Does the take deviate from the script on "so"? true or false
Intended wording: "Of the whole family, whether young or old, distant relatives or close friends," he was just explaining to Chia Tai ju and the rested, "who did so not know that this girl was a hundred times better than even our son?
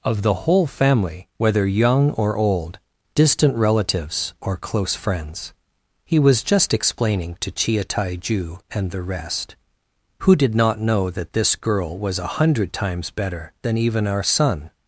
true